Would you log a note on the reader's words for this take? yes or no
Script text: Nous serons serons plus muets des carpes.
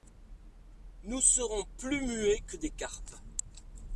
yes